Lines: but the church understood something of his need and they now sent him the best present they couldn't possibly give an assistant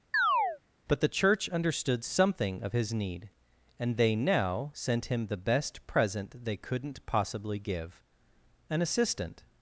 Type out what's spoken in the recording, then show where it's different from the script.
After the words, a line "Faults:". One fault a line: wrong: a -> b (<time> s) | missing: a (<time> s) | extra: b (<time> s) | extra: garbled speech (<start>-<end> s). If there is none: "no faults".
but the church understood something of his need and they now sent him the best present they couldn't possibly give an assistant
Faults:
no faults